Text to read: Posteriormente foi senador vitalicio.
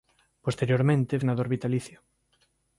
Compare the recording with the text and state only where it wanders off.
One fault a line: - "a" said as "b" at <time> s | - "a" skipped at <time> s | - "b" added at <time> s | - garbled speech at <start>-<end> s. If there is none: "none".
- "foi" skipped at 1.1 s